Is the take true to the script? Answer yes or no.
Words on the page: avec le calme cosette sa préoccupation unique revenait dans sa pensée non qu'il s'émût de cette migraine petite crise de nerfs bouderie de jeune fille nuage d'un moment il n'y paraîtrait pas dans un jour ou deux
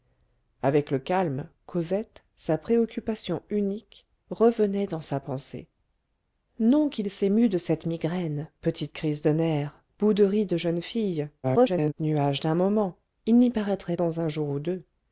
no